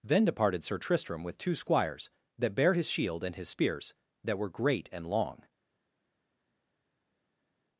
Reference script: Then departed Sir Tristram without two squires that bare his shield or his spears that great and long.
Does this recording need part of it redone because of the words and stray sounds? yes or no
yes